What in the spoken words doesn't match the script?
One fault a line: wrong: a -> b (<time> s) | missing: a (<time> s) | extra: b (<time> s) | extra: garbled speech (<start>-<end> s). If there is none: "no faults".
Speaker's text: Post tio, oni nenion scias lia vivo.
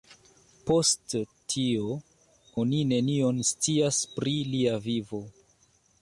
extra: pri (4.2 s)